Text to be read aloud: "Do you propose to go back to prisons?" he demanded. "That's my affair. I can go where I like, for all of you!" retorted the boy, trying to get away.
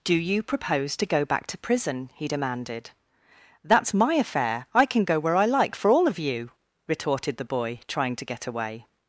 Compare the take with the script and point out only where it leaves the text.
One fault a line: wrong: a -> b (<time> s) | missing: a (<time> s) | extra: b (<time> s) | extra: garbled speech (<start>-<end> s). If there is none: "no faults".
wrong: prisons -> prison (1.6 s)